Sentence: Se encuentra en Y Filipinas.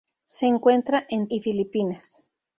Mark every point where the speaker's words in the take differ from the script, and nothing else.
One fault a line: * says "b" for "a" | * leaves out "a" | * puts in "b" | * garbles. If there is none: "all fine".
all fine